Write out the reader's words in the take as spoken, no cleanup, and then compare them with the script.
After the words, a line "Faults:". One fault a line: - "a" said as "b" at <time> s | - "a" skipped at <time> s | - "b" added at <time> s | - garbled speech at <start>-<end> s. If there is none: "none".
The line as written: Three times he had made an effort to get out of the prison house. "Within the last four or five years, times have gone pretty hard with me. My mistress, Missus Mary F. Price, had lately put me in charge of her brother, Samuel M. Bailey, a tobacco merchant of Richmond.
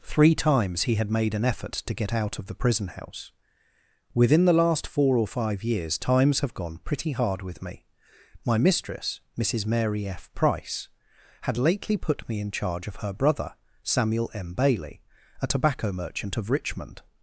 Three times he had made an effort to get out of the prison house. "Within the last four or five years, times have gone pretty hard with me. My mistress, Missus Mary F. Price, had lately put me in charge of her brother, Samuel M. Bailey, a tobacco merchant of Richmond.
Faults:
none